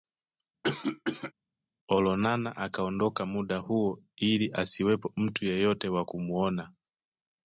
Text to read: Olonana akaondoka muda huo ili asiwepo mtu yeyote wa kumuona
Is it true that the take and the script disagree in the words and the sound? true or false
true